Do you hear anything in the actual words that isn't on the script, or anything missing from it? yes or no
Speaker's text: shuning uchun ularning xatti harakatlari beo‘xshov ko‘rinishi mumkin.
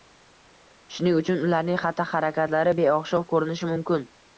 no